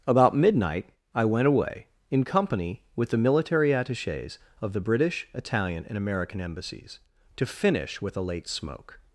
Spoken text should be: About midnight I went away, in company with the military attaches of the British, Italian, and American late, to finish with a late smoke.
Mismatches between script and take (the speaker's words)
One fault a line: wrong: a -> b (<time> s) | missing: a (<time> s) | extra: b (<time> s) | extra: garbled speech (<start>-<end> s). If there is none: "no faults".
wrong: late -> embassies (6.4 s)